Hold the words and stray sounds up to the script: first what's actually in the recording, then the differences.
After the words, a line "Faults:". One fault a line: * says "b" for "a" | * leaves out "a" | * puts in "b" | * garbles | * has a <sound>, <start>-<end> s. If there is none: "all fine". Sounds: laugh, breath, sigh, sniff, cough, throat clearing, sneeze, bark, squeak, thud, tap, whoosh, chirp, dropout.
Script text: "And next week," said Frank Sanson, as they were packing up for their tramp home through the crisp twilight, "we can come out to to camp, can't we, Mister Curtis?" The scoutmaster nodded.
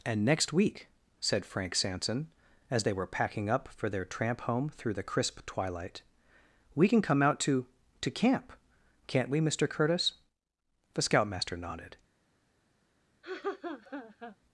"And next week," said Frank Sanson, as they were packing up for their tramp home through the crisp twilight, "we can come out to to camp, can't we, Mister Curtis?" The scoutmaster nodded.
Faults:
* has a laugh, 13.2-14.4 s